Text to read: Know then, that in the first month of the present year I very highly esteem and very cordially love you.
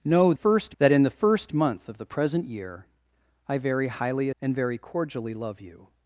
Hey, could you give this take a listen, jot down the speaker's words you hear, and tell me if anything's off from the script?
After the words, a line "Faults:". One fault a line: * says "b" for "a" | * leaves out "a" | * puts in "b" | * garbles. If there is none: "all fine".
Know first, that in the first month of the present year I very highly and very cordially love you.
Faults:
* says "first" for "then"
* leaves out "esteem"